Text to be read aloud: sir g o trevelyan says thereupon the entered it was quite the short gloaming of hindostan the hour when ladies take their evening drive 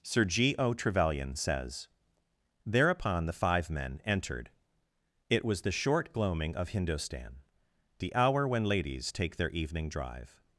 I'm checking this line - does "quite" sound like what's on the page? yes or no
no